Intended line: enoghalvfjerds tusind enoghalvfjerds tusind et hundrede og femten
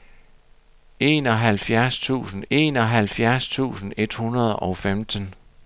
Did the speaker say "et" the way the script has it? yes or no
yes